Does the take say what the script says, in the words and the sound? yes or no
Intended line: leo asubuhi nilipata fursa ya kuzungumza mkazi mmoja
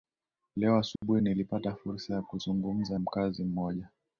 no